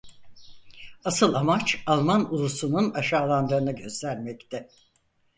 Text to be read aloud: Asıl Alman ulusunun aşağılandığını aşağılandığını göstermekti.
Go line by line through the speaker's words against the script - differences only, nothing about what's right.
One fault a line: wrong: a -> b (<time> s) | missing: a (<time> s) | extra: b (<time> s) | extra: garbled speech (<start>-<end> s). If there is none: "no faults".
extra: amaç (1.3 s)
missing: aşağılandığını (3.8 s)